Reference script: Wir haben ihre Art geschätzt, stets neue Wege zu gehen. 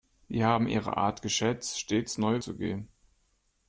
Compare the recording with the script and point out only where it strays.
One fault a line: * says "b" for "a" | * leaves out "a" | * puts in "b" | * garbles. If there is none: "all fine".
* leaves out "Wege"